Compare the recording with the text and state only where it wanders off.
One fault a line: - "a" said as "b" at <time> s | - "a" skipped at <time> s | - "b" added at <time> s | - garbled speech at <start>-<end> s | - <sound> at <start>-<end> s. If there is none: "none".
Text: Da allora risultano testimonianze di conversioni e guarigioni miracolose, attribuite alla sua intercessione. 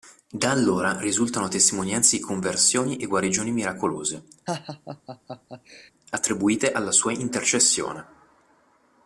- laugh at 4.5-5.9 s